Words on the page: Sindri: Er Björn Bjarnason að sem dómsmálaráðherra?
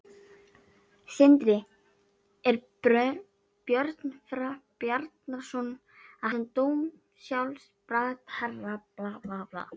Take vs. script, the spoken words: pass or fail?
pass